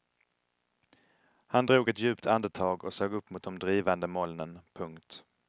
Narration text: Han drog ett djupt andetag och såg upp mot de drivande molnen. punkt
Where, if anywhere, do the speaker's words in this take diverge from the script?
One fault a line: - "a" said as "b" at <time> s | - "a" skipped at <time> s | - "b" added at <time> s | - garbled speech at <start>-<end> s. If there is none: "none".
none